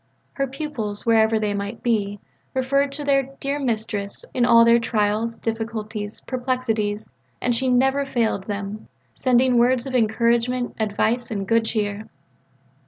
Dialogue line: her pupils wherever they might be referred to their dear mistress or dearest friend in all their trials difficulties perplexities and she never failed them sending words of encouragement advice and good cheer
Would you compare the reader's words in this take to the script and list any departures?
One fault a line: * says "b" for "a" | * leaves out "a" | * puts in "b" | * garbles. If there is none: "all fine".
* leaves out "or dearest friend"